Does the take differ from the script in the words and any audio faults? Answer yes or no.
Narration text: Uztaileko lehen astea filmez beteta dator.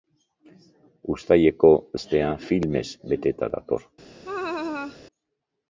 yes